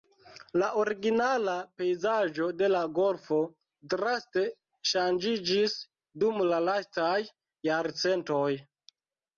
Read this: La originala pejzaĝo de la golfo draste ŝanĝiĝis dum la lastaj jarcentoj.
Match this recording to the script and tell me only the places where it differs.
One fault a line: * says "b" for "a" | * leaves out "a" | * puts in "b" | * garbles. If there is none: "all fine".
all fine